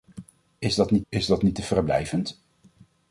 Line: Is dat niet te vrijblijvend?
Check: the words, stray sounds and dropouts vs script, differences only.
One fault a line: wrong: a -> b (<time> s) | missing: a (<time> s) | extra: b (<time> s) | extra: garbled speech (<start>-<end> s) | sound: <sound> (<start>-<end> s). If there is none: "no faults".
extra: is dat niet (1.1 s)